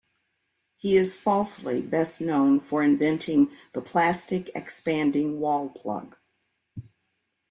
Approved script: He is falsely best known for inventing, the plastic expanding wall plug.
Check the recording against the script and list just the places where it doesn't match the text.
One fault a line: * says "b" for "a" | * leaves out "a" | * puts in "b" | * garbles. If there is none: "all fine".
all fine